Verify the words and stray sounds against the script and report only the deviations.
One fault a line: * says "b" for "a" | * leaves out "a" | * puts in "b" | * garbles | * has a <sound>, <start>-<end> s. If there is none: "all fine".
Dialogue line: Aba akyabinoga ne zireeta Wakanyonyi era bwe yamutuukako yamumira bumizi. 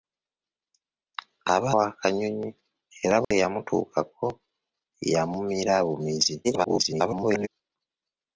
* leaves out "akyabinoga ne zireeta"
* has a dropout, 3.2-3.3 s
* garbles